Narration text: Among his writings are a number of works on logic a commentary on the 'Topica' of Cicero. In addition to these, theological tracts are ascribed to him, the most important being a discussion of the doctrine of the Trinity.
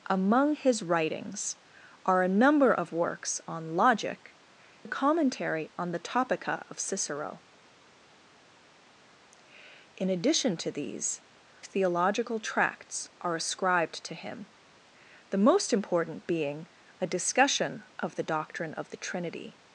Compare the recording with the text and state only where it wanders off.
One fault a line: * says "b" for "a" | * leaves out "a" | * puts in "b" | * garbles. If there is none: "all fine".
all fine